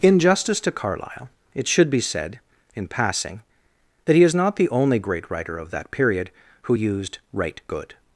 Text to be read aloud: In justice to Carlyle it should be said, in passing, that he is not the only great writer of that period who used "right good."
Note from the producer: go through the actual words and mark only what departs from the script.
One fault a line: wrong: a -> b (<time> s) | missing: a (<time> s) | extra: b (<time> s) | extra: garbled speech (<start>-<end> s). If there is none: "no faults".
no faults